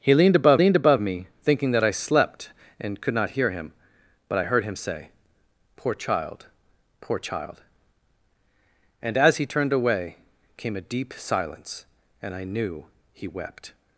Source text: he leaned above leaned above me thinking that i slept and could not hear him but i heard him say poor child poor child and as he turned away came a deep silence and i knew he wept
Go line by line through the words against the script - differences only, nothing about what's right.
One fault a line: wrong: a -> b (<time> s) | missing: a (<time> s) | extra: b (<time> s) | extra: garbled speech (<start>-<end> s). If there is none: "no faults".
no faults